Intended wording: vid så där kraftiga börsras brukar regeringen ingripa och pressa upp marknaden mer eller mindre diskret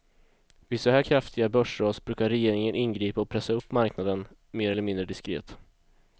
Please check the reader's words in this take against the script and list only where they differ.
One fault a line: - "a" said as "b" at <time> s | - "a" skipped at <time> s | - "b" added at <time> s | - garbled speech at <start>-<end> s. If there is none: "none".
- "där" said as "här" at 0.9 s